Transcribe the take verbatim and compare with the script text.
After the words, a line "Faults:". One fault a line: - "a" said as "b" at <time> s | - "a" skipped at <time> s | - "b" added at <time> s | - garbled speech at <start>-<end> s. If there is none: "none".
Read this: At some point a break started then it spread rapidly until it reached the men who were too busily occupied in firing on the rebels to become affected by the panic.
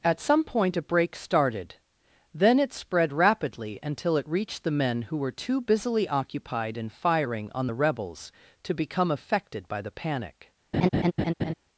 At some point a break started then it spread rapidly until it reached the men who were too busily occupied in firing on the rebels to become affected by the panic.
Faults:
none